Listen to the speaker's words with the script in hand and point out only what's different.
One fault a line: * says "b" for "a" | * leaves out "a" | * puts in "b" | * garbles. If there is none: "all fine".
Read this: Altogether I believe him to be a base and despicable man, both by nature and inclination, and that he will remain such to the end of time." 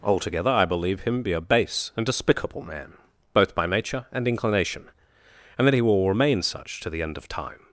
* leaves out "to"